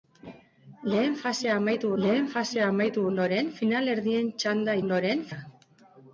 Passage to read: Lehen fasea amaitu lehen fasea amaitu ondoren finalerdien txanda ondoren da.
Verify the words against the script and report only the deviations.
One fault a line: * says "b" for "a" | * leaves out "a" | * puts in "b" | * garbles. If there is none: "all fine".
all fine